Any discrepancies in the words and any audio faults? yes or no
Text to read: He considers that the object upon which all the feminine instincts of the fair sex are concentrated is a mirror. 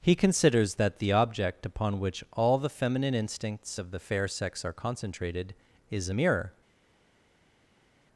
no